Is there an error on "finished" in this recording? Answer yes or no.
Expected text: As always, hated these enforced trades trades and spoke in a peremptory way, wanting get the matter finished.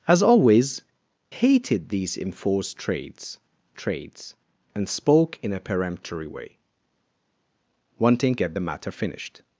no